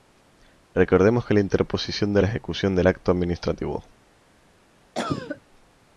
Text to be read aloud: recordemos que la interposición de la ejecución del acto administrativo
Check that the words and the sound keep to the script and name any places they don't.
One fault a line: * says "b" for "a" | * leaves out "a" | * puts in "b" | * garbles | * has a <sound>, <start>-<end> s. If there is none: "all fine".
* has a cough, 5.0-5.4 s